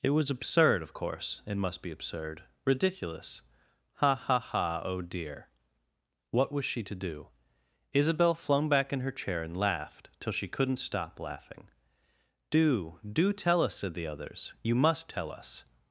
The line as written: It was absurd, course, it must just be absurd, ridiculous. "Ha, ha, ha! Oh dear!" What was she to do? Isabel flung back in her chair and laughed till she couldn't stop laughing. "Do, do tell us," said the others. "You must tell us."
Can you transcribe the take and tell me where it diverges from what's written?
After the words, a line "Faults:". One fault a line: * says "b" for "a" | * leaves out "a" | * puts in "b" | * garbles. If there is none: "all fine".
It was absurd, of course, it must be absurd, ridiculous. "Ha, ha, ha! Oh dear!" What was she to do? Isabel flung back in her chair and laughed till she couldn't stop laughing. "Do, do tell us," said the others. "You must tell us."
Faults:
* puts in "of"
* leaves out "just"